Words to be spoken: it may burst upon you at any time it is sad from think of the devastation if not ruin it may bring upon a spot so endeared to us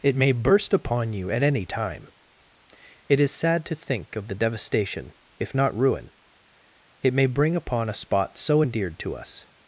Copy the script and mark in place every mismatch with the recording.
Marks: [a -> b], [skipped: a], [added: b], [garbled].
it may burst upon you at any time it is sad [from -> to] think of the devastation if not ruin it may bring upon a spot so endeared to us